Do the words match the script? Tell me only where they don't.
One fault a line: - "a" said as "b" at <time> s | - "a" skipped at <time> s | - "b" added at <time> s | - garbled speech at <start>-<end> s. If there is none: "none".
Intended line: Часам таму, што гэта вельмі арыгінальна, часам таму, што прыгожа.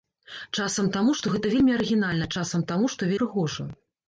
none